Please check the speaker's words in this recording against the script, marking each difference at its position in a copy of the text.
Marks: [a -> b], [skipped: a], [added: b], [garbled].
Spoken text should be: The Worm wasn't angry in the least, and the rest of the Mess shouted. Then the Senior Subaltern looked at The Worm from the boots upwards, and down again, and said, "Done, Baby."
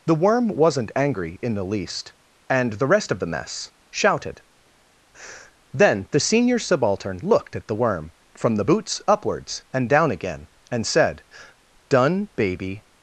The Worm wasn't angry in the least, and the rest of the Mess shouted. Then the Senior Subaltern looked at The Worm from the boots upwards, and down again, and said, "Done, Baby."